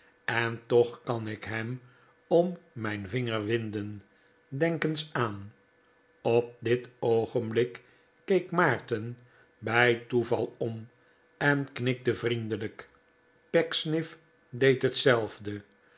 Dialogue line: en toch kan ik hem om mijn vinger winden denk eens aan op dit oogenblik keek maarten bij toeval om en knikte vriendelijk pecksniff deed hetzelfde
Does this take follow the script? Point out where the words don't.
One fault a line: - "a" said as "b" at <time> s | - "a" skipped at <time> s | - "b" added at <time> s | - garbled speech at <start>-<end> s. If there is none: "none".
none